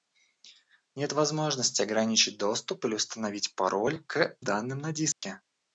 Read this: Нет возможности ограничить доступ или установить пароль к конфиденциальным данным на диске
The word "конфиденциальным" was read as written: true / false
false